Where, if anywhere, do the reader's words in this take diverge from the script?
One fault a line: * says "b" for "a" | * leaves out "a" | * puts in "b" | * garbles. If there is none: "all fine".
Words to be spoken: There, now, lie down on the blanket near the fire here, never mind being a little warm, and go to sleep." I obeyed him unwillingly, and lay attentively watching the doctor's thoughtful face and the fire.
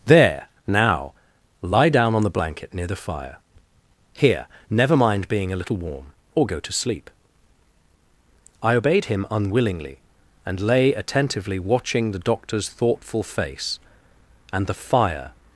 * says "or" for "and"